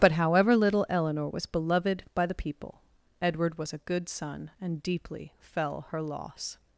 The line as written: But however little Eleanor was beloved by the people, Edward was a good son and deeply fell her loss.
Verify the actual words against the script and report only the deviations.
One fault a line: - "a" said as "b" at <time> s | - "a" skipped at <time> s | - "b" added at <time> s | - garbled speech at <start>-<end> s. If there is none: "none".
none